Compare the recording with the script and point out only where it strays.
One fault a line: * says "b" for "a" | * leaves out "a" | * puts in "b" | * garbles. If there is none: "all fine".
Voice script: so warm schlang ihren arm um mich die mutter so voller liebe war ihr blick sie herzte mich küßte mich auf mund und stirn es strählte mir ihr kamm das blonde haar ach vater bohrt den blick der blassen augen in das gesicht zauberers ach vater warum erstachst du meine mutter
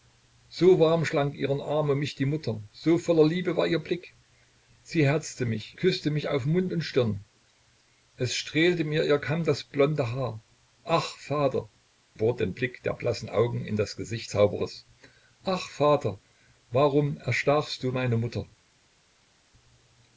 all fine